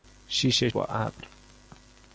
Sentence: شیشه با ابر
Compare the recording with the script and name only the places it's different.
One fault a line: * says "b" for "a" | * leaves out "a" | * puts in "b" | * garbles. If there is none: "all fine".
all fine